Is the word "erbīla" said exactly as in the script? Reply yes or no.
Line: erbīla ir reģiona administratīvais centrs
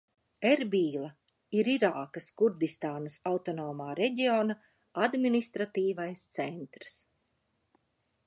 yes